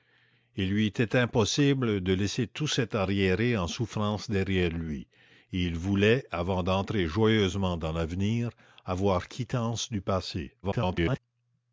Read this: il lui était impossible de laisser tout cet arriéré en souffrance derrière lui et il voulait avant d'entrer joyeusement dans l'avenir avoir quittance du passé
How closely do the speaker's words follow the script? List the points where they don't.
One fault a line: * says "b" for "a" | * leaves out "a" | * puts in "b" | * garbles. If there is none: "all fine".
* garbles